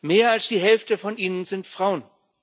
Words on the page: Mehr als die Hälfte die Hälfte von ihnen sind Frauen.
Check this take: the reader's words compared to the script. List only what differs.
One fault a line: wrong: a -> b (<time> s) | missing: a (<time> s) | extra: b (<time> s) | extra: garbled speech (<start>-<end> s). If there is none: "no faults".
missing: die Hälfte (1.0 s)